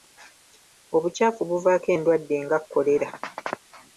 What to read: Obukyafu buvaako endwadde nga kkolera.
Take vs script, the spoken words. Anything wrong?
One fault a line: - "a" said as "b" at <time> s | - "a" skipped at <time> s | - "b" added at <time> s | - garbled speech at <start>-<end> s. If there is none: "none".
none